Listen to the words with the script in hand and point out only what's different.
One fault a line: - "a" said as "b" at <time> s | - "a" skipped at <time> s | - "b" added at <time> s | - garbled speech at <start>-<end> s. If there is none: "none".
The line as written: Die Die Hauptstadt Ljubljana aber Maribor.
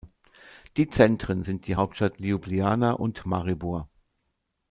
- "Zentren sind" added at 0.9 s
- "aber" said as "und" at 2.9 s